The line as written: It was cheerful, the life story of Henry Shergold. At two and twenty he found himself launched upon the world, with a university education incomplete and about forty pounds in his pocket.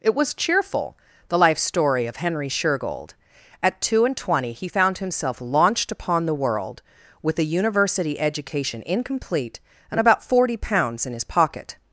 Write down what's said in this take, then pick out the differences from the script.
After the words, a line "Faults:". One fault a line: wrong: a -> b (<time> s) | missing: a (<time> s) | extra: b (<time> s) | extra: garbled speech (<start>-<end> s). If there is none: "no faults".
It was cheerful, the life story of Henry Shergold. At two and twenty he found himself launched upon the world, with a university education incomplete and about forty pounds in his pocket.
Faults:
no faults